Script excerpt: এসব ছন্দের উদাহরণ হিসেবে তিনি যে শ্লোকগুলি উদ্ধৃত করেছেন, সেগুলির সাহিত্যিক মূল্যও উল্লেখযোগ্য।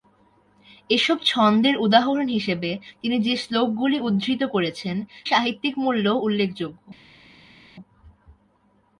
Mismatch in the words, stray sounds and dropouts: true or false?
true